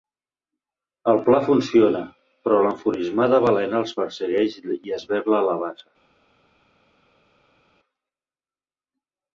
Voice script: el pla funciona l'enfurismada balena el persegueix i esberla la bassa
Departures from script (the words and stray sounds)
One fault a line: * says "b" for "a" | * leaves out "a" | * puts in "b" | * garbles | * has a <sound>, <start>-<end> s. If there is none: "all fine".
* puts in "però"
* says "els" for "el"